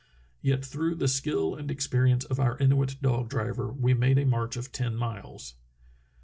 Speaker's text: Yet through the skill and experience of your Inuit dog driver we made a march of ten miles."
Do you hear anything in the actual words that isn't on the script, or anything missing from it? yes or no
yes